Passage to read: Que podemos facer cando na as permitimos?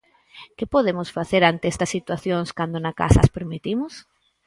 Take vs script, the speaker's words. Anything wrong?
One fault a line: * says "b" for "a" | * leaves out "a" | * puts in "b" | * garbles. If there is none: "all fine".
* puts in "ante estas situacións"
* puts in "casa"